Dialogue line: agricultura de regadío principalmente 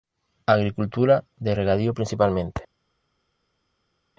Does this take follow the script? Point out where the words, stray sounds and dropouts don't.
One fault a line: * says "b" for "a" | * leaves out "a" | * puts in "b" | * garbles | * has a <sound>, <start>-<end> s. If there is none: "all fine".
all fine